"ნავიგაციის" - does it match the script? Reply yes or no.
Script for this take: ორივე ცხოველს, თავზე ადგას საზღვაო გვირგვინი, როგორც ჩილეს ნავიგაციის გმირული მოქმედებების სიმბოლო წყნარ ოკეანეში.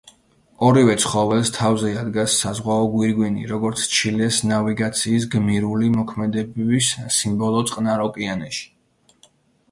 yes